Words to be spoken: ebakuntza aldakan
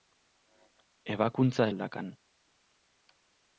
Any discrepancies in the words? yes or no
no